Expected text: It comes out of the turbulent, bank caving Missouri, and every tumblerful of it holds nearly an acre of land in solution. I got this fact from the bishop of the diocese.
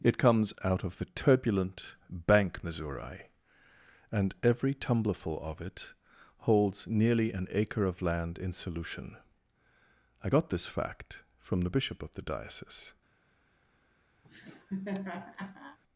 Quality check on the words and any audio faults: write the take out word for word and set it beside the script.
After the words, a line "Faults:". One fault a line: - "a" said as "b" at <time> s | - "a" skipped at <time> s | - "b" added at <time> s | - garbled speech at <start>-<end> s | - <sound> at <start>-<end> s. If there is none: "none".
It comes out of the turbulent, bank Missouri, and every tumblerful of it holds nearly an acre of land in solution. I got this fact from the bishop of the diocese.
Faults:
- "caving" skipped at 2.6 s
- laugh at 14.2-15.8 s